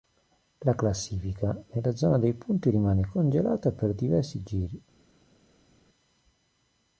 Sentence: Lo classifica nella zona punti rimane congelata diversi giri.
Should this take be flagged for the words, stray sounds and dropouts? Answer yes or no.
yes